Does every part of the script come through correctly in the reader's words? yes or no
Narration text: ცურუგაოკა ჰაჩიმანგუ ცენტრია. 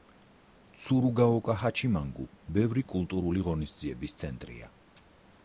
no